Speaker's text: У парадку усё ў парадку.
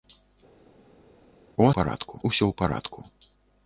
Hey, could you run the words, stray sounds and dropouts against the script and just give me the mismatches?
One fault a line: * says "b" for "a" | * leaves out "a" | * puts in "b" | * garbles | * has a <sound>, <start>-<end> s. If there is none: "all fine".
all fine